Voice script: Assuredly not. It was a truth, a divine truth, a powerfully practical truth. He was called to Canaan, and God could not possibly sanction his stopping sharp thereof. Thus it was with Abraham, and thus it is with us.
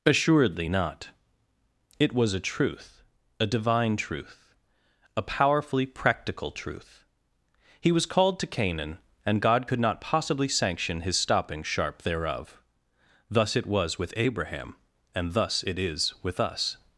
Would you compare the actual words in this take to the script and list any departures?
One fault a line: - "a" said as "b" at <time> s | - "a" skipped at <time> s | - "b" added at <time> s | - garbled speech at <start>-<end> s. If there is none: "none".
none